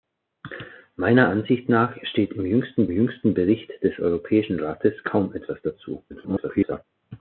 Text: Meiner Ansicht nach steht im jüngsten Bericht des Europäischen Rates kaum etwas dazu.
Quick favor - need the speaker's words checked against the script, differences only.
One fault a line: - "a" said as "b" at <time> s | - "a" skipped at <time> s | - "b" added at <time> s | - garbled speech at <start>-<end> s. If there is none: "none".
- "jüngsten" added at 2.9 s
- garbled speech at 6.1-6.8 s